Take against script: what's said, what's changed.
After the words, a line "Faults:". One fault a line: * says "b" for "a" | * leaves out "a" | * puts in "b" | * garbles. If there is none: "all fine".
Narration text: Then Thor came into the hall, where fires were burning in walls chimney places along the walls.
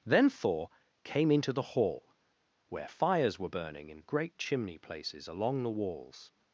Then Thor came into the hall, where fires were burning in great chimney places along the walls.
Faults:
* says "great" for "walls"